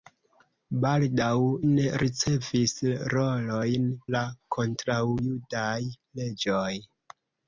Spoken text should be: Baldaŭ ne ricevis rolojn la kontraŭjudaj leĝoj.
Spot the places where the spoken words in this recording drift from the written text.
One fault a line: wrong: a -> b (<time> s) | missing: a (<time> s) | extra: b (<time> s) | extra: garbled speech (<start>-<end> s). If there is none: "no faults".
no faults